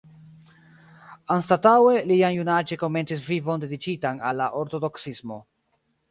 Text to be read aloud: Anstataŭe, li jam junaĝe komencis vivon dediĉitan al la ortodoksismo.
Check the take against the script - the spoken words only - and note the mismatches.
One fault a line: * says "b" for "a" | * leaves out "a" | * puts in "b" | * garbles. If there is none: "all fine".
all fine